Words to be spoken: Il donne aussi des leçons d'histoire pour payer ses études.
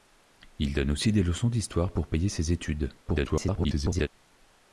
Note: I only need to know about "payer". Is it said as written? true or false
true